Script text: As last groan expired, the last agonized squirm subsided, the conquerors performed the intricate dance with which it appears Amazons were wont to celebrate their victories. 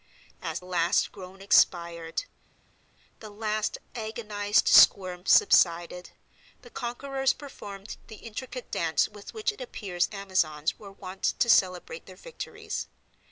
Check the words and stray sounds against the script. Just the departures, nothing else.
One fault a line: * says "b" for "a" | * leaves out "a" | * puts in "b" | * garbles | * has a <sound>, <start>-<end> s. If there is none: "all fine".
all fine